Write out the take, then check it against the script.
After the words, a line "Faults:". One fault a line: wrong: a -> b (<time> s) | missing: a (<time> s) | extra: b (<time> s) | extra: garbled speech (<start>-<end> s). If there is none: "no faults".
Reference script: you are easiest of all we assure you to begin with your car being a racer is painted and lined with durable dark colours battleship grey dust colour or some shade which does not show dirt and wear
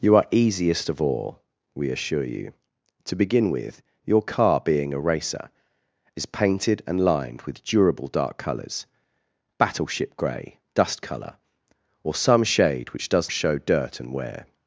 you are easiest of all we assure you to begin with your car being a racer is painted and lined with durable dark colours battleship grey dust colour or some shade which does show dirt and wear
Faults:
missing: not (13.3 s)